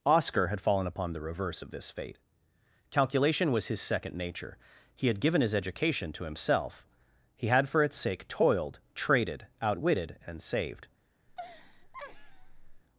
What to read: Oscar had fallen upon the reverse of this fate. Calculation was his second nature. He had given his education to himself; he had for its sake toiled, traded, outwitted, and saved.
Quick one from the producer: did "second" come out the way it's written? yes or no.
yes